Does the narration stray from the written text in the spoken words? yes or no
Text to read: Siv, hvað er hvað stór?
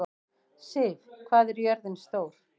yes